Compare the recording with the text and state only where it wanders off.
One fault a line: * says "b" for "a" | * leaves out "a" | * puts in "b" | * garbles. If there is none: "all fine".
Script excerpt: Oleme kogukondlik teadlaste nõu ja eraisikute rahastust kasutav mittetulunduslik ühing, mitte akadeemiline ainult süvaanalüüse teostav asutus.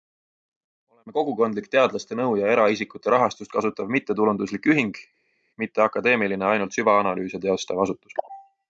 all fine